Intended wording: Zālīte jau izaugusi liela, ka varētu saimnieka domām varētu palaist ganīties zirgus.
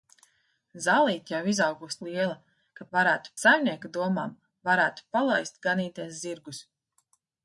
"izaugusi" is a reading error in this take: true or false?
false